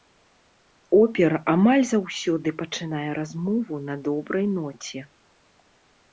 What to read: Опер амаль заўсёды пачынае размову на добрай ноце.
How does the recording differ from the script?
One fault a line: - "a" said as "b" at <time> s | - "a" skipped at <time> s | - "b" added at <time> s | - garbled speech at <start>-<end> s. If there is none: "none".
none